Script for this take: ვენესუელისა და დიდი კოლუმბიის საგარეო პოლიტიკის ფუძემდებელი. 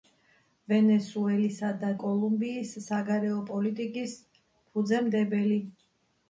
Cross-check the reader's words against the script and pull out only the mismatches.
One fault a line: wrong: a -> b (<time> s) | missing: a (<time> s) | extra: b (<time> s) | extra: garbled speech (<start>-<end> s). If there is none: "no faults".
missing: დიდი (1.9 s)